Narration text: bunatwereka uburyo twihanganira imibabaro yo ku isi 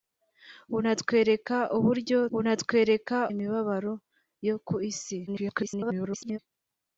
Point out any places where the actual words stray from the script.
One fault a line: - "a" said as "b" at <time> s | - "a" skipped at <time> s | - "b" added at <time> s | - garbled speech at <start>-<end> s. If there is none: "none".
- "twihanganira" said as "bunatwereka" at 2.3 s
- garbled speech at 5.3-6.4 s